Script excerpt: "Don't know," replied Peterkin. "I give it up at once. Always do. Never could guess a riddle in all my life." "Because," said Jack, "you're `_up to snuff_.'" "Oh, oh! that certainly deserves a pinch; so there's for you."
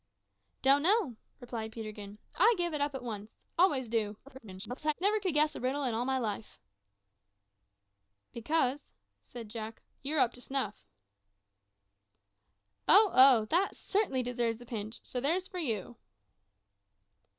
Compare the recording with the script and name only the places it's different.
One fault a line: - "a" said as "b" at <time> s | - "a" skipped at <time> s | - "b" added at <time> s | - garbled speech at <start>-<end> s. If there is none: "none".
- garbled speech at 4.3-4.9 s